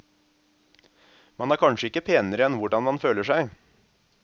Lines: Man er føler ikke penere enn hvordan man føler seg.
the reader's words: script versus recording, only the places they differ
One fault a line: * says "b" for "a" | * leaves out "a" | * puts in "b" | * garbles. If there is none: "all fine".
* says "kanskje" for "føler"